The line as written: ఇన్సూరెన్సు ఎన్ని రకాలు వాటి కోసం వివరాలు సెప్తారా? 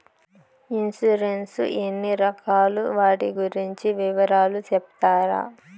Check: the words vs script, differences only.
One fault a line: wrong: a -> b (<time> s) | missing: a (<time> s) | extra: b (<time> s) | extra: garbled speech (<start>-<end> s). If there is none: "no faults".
wrong: కోసం -> గురించి (3.4 s)